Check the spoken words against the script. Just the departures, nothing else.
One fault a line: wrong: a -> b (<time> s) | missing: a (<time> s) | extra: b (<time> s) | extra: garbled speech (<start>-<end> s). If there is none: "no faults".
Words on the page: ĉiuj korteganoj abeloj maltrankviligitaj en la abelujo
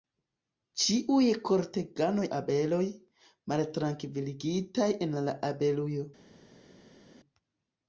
no faults